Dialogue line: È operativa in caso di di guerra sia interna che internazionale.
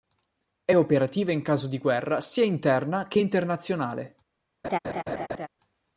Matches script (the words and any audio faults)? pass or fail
fail